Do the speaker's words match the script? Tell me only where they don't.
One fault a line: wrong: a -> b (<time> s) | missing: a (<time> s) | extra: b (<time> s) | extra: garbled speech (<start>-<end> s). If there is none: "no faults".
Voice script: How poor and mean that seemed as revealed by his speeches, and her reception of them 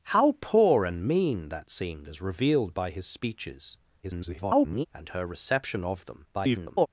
extra: garbled speech (4.0-4.9 s)
extra: garbled speech (6.3-6.9 s)